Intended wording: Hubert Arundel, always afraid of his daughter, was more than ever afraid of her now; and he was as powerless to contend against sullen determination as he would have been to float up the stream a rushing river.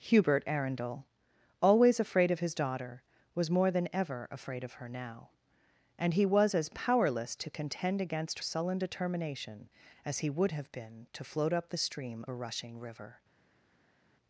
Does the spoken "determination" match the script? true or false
true